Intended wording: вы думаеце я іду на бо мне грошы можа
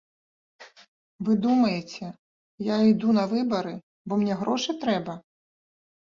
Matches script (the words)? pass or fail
fail